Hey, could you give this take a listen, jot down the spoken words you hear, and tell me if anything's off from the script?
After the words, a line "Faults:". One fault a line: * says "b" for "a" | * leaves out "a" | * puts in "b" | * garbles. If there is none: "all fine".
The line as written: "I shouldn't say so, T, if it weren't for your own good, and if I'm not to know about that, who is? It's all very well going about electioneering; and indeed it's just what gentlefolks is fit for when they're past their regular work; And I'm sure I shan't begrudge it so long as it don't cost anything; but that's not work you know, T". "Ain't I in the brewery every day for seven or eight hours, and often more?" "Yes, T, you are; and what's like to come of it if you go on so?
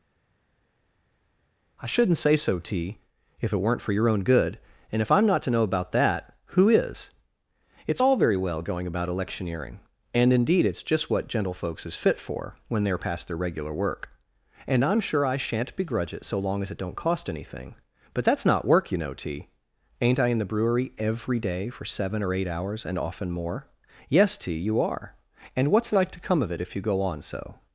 "I shouldn't say so, T, if it weren't for your own good, and if I'm not to know about that, who is? It's all very well going about electioneering; and indeed it's just what gentlefolks is fit for when they're past their regular work; And I'm sure I shan't begrudge it so long as it don't cost anything; but that's not work you know, T". "Ain't I in the brewery every day for seven or eight hours, and often more?" "Yes, T, you are; and what's like to come of it if you go on so?
Faults:
all fine